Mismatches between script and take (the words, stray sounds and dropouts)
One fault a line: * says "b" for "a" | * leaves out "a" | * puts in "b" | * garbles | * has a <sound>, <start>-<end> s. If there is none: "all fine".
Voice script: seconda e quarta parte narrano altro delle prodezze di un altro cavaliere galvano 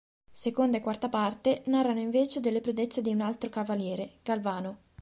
* says "invece" for "altro"